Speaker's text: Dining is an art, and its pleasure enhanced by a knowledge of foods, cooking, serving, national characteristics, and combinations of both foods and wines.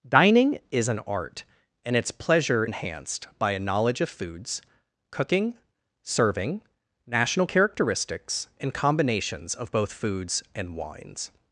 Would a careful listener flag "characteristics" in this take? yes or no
no